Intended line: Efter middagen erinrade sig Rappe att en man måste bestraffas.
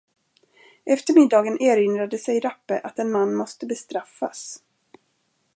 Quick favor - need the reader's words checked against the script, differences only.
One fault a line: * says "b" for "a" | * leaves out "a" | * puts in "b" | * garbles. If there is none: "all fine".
all fine